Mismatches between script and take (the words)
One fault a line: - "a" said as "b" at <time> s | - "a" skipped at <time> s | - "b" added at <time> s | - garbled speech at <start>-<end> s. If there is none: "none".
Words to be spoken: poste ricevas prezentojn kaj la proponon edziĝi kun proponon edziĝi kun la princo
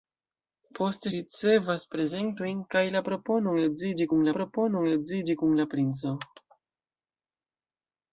none